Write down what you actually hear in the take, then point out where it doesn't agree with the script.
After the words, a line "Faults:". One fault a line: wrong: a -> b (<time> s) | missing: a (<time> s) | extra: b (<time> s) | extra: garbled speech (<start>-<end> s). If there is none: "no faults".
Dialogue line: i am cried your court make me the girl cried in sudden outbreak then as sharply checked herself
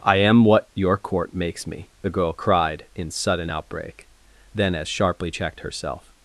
i am what your court makes me the girl cried in sudden outbreak then as sharply checked herself
Faults:
wrong: cried -> what (0.5 s)
wrong: make -> makes (1.3 s)